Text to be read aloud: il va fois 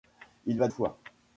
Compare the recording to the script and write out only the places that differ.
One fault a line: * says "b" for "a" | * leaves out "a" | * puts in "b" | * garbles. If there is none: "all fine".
all fine